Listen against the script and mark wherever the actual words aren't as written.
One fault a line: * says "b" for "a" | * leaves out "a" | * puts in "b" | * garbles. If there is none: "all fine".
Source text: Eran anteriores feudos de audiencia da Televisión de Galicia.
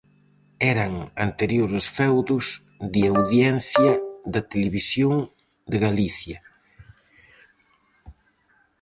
all fine